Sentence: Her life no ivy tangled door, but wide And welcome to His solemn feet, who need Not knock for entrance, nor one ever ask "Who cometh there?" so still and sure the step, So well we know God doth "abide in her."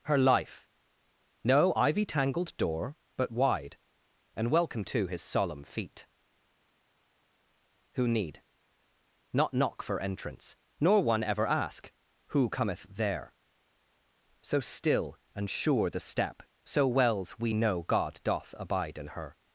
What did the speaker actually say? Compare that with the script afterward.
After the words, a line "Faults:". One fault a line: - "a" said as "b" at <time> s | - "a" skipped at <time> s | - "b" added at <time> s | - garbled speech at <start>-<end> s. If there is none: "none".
Her life no ivy tangled door, but wide And welcome to His solemn feet, who need Not knock for entrance, nor one ever ask "Who cometh there?" so still and sure the step, So wells we know God doth "abide in her."
Faults:
- "well" said as "wells" at 16.9 s